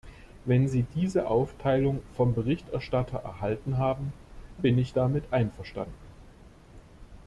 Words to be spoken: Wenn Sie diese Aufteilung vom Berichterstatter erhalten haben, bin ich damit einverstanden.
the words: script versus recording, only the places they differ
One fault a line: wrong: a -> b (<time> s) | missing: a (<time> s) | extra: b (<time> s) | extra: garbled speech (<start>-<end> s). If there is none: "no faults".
no faults